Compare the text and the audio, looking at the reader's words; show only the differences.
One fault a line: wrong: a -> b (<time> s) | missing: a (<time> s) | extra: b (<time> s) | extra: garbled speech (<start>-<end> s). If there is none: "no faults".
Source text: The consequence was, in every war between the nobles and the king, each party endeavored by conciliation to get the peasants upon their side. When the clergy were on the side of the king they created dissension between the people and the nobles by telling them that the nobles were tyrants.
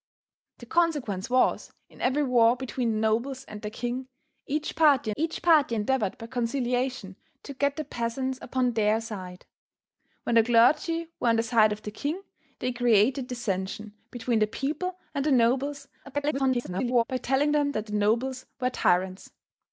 extra: each party (5.2 s)
extra: garbled speech (16.0-17.0 s)